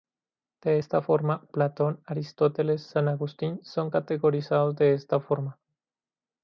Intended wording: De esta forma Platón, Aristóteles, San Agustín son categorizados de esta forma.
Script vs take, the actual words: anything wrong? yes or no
no